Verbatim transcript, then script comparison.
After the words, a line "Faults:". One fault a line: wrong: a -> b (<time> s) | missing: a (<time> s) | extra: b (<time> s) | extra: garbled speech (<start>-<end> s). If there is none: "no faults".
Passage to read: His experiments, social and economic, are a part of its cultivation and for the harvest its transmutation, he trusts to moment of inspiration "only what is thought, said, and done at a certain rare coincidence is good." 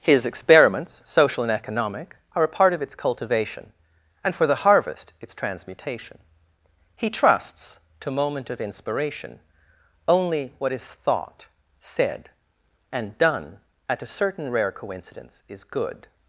His experiments, social and economic, are a part of its cultivation and for the harvest its transmutation, he trusts to moment of inspiration "only what is thought, said, and done at a certain rare coincidence is good."
Faults:
no faults